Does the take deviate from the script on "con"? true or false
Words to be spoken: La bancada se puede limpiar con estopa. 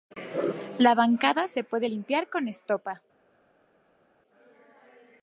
false